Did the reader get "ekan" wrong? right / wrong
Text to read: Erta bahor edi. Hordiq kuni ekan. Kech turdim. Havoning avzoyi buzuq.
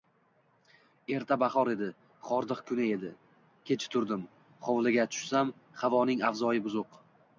wrong